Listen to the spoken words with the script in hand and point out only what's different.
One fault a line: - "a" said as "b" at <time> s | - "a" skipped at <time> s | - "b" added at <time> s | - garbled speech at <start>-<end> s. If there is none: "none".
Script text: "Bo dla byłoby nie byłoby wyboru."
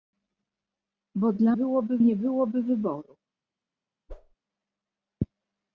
none